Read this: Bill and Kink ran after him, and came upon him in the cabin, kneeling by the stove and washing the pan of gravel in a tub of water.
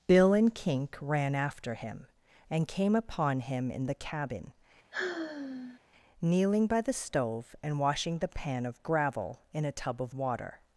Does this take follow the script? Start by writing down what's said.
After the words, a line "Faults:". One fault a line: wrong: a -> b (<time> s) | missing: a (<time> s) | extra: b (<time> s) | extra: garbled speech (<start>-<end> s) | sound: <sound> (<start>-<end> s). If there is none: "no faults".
Bill and Kink ran after him, and came upon him in the cabin, kneeling by the stove and washing the pan of gravel in a tub of water.
Faults:
sound: sigh (4.9-5.8 s)